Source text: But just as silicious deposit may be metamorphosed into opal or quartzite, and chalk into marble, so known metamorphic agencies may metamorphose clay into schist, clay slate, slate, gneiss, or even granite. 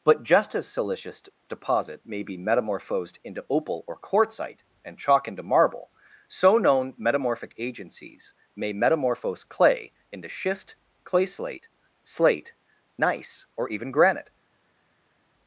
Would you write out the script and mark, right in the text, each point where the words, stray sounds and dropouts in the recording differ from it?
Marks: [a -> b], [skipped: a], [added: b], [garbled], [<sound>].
But just as silicious deposit may be metamorphosed into opal or quartzite, and chalk into marble, so known metamorphic agencies may metamorphose clay into schist, clay slate, slate, gneiss, or even granite.